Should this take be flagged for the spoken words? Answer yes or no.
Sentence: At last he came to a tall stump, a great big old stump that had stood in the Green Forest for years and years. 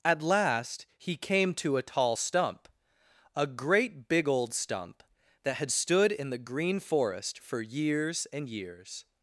no